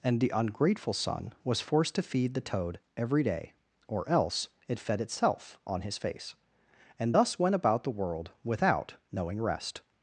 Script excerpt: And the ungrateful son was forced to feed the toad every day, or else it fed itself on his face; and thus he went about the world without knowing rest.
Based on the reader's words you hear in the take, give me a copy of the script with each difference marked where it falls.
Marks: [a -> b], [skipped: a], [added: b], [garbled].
And the ungrateful son was forced to feed the toad every day, or else it fed itself on his face; and thus [skipped: he] went about the world without knowing rest.